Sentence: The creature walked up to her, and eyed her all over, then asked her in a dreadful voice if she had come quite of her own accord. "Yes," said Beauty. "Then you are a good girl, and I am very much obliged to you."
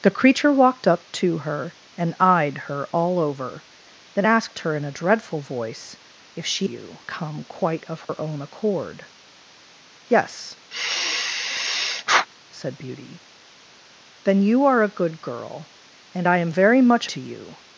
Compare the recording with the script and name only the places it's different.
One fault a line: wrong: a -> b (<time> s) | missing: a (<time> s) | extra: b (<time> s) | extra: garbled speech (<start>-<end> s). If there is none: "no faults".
wrong: had -> you (6.6 s)
missing: obliged (17.1 s)